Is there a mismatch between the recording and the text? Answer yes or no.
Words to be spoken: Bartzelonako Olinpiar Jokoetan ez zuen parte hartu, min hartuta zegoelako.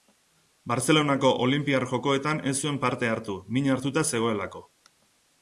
no